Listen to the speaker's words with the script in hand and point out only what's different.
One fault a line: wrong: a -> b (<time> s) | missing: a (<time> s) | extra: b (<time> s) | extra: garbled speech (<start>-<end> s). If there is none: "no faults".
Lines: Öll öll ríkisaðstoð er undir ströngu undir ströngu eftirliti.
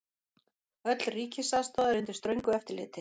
missing: öll (1.1 s)
missing: undir ströngu (2.5 s)